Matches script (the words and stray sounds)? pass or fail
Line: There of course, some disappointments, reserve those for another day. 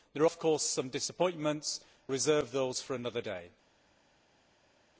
pass